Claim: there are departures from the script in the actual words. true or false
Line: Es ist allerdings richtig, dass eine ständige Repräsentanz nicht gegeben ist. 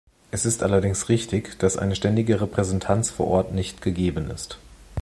true